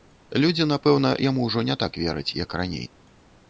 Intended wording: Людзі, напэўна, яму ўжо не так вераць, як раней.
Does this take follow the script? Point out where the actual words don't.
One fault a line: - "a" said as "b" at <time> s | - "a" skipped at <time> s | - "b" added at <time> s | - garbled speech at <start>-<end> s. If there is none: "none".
none